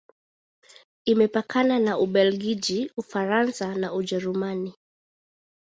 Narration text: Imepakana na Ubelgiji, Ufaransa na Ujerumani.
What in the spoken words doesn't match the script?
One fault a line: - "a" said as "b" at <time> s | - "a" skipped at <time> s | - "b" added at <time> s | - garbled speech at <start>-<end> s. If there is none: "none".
none